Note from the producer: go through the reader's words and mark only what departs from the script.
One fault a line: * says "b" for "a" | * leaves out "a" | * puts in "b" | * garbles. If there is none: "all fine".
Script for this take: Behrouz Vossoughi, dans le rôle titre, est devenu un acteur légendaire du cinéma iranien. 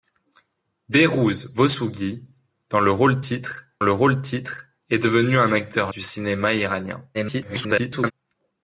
* puts in "le rôle titre"
* leaves out "légendaire"
* garbles